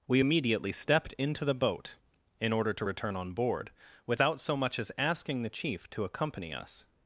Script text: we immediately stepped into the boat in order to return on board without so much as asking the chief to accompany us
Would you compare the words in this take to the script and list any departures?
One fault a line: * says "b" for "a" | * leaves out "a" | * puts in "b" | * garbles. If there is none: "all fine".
all fine